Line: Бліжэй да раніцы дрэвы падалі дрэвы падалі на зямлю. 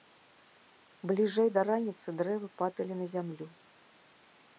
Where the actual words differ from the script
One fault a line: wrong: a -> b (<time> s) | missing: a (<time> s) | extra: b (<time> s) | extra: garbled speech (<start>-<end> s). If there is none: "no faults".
missing: дрэвы падалі (2.9 s)